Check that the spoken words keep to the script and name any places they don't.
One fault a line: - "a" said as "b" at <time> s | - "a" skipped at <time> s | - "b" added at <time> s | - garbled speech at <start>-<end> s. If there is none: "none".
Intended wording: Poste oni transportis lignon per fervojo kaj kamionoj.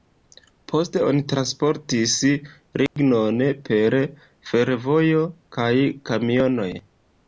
none